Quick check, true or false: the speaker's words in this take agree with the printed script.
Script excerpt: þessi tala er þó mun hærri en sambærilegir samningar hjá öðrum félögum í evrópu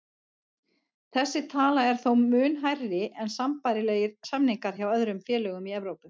true